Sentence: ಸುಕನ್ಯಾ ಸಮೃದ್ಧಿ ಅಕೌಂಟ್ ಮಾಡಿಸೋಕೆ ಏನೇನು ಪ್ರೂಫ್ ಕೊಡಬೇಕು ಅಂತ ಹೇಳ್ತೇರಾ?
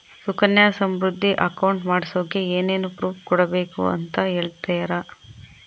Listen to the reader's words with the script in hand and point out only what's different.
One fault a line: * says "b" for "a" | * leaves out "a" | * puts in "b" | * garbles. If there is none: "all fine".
all fine